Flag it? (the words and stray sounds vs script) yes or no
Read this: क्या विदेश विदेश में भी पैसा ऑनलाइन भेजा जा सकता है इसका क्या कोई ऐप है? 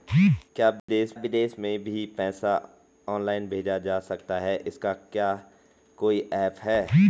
yes